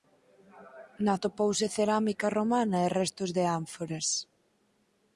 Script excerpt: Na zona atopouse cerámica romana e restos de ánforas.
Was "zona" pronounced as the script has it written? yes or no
no